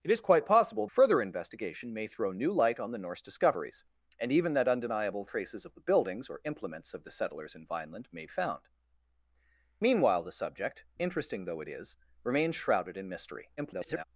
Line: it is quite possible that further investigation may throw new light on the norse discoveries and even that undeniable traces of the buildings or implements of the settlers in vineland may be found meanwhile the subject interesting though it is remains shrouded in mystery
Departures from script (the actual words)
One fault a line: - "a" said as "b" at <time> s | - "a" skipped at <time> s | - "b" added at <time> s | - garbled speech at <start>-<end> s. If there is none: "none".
- "that" skipped at 0.9 s
- "be" skipped at 8.3 s
- garbled speech at 13.6-14.0 s